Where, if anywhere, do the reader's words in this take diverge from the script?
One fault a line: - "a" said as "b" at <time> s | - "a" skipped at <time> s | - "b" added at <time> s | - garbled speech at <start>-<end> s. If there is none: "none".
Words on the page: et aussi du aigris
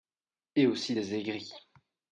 - "du" said as "des" at 0.9 s